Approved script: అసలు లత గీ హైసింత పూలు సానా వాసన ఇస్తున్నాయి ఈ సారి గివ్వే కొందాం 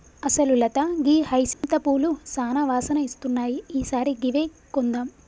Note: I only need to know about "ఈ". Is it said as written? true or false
true